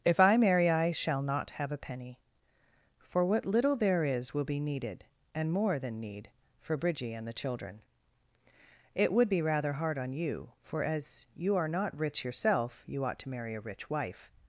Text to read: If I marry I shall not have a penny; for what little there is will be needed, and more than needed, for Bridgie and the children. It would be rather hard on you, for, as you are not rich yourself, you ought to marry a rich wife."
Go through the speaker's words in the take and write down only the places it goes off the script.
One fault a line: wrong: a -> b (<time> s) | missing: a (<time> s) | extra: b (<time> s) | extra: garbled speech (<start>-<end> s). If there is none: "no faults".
wrong: needed -> need (6.0 s)